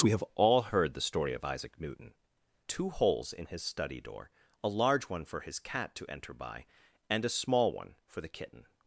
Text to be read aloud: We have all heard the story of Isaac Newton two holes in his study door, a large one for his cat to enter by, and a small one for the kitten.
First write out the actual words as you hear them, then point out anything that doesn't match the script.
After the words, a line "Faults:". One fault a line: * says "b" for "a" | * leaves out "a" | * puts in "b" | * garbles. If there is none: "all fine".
We have all heard the story of Isaac Newton two holes in his study door, a large one for his cat to enter by, and a small one for the kitten.
Faults:
all fine